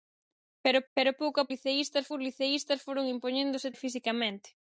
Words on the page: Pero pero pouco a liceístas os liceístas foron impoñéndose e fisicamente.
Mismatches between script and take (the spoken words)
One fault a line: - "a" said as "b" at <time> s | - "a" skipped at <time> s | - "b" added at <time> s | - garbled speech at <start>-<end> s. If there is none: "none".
none